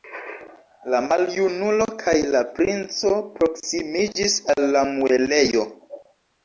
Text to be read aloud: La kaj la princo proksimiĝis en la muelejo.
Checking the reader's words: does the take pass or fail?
fail